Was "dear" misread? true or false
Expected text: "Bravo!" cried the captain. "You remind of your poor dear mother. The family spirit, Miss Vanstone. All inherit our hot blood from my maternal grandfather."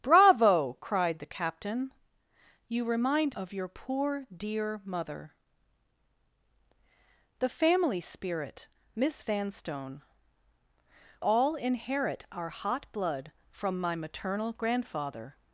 false